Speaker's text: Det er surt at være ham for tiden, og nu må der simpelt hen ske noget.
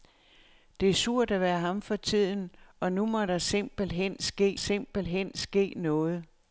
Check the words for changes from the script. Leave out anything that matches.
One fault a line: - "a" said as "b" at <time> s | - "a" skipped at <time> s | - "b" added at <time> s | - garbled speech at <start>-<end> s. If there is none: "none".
- "simpelt hen ske" added at 4.5 s